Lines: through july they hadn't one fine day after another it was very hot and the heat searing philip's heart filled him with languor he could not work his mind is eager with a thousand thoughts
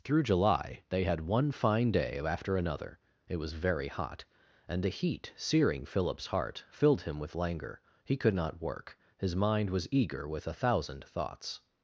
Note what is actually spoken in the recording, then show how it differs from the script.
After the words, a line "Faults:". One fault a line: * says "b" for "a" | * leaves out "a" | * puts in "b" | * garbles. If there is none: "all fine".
through july they had one fine day after another it was very hot and the heat searing philip's heart filled him with languor he could not work his mind was eager with a thousand thoughts
Faults:
* says "had" for "hadn't"
* says "was" for "is"